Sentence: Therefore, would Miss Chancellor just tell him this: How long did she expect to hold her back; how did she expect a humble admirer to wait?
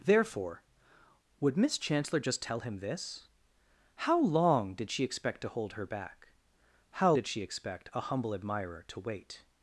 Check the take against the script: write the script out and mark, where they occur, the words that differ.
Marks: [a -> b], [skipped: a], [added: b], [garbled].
Therefore, would Miss Chancellor just tell him this: How long did she expect to hold her back; how did she expect a humble admirer to wait?